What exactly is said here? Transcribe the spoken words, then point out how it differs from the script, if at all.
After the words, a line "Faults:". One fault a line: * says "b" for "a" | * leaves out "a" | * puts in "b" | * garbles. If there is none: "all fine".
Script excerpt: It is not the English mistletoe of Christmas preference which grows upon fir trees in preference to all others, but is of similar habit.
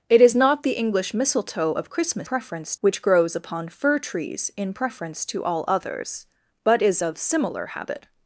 It is not the English mistletoe of Christmas preference which grows upon fir trees in preference to all others, but is of similar habit.
Faults:
all fine